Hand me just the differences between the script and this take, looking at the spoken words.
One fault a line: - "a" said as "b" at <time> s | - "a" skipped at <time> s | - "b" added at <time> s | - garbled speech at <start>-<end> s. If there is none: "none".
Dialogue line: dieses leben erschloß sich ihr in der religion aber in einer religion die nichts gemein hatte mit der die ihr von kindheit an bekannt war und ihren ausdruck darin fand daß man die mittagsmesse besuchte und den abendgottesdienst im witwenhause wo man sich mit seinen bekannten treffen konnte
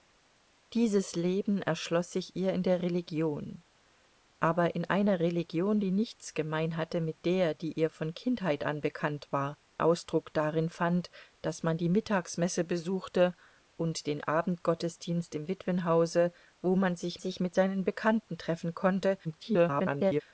- "und ihren" skipped at 9.6 s
- "sich" added at 17.2 s
- garbled speech at 19.2-20.2 s